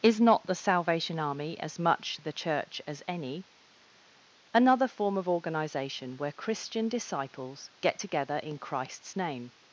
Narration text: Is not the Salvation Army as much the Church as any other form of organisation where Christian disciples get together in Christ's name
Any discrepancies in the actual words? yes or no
yes